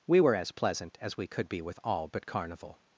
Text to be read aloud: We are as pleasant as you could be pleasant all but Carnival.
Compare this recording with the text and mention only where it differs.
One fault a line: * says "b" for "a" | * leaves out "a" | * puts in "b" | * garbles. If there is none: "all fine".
* says "were" for "are"
* says "we" for "you"
* says "with" for "pleasant"